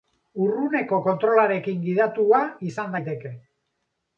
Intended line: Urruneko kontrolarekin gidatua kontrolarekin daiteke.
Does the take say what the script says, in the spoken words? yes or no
no